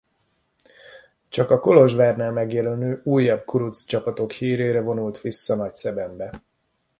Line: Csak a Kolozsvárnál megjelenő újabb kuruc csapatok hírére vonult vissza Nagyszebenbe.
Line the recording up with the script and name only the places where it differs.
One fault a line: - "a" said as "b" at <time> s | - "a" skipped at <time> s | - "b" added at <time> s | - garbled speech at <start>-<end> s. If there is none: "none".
none